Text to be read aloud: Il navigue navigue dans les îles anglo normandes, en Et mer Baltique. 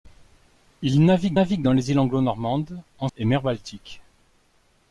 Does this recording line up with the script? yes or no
yes